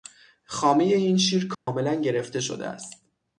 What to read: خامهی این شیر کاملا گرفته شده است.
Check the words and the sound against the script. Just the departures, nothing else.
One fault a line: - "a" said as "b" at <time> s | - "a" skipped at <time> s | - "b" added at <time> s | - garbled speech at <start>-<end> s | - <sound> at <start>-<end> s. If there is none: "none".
- dropout at 1.5-1.7 s